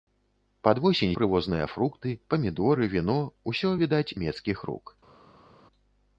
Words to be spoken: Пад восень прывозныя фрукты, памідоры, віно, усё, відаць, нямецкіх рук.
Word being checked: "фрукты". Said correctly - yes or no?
yes